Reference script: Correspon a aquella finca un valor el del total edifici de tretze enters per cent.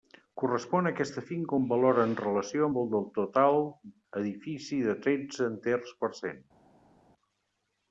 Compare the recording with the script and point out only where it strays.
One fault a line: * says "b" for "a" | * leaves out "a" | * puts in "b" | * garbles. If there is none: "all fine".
* says "aquesta" for "aquella"
* puts in "en relació amb"